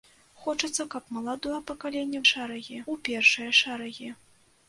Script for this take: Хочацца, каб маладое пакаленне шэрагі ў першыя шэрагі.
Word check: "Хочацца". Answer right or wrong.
right